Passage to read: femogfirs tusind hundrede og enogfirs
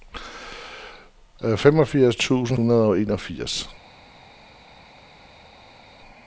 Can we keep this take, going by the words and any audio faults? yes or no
yes